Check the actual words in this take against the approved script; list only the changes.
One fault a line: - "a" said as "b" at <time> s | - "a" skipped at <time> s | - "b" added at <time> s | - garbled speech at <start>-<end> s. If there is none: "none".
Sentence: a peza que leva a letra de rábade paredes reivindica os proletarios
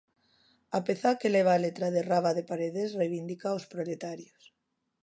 none